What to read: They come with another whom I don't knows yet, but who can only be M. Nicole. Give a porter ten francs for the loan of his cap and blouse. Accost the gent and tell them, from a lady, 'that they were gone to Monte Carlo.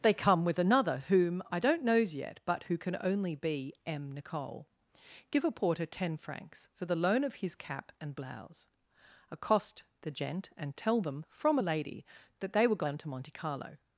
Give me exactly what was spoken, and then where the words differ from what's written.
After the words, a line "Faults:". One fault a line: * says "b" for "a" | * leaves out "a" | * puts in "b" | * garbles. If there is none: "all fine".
They come with another whom I don't knows yet, but who can only be M. Nicole. Give a porter ten francs for the loan of his cap and blouse. Accost the gent and tell them, from a lady, 'that they were gone to Monte Carlo.
Faults:
all fine